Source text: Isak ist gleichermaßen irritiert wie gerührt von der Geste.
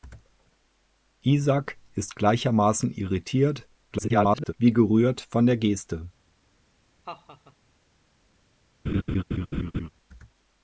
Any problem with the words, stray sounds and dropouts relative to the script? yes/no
yes